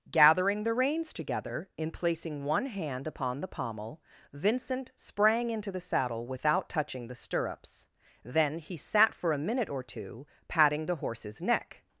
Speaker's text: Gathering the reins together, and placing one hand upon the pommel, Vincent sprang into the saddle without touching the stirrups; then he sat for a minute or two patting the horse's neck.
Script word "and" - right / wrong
wrong